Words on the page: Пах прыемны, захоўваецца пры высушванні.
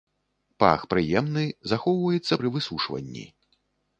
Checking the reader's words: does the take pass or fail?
pass